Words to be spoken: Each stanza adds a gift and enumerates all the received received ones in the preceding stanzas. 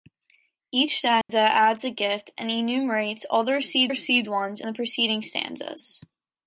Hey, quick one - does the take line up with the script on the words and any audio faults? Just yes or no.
no